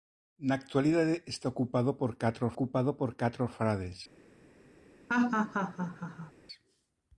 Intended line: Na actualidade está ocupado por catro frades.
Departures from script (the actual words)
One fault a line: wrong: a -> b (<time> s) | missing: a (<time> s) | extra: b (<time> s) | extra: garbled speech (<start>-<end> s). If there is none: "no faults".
extra: ocupado por catro (2.5 s)